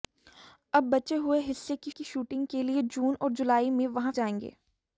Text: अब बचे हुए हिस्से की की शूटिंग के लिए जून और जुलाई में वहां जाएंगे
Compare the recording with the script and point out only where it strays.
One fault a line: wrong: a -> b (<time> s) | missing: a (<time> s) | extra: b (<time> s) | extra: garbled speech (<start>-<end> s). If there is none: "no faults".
no faults